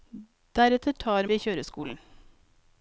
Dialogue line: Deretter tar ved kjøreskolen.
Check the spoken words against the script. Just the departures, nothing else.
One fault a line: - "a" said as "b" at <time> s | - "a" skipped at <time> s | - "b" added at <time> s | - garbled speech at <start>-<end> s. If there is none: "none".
none